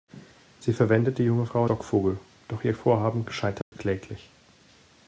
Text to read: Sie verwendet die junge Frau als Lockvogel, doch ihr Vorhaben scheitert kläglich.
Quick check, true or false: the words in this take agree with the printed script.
false